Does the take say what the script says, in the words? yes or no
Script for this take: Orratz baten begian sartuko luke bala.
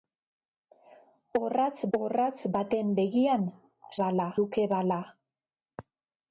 no